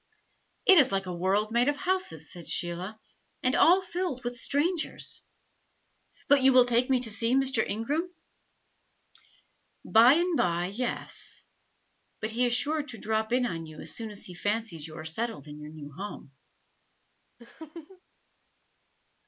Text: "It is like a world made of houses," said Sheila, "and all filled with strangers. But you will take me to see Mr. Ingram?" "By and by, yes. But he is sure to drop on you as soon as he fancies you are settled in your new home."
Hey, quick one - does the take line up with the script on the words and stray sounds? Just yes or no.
no